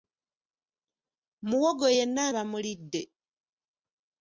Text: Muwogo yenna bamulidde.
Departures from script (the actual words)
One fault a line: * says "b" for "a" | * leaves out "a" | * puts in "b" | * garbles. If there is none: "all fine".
all fine